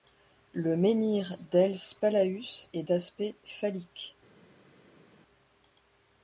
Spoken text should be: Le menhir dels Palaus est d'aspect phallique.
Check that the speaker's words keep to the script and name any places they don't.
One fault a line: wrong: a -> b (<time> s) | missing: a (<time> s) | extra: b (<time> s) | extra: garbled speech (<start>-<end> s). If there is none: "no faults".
no faults